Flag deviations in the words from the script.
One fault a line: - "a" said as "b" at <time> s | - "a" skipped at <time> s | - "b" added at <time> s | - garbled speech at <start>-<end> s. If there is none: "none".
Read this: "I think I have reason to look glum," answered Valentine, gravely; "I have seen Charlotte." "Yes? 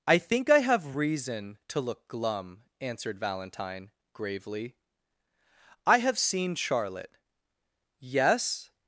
none